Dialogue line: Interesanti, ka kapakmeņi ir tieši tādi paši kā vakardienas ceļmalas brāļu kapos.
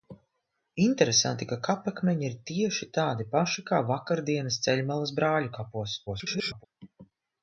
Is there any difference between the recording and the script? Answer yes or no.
yes